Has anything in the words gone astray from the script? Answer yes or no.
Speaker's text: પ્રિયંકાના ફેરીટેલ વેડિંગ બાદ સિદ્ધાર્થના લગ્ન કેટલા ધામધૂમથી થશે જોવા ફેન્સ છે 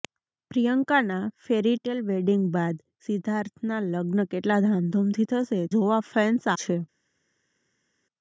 no